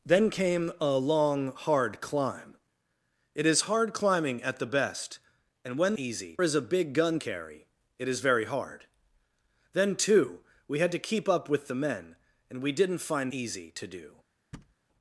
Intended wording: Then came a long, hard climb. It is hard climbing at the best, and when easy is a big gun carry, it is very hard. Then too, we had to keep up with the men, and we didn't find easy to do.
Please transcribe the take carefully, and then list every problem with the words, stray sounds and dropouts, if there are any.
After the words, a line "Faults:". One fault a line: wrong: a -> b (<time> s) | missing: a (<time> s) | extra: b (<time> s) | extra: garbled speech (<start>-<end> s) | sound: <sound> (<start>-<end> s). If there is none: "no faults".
Then came a long, hard climb. It is hard climbing at the best, and when easy is a big gun carry, it is very hard. Then too, we had to keep up with the men, and we didn't find easy to do.
Faults:
sound: thud (14.5-14.7 s)